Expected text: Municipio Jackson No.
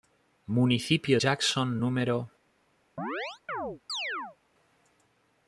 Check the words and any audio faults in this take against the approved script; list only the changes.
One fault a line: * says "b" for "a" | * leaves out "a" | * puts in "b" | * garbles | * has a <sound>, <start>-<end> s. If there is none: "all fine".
* has a chirp, 3.0-4.4 s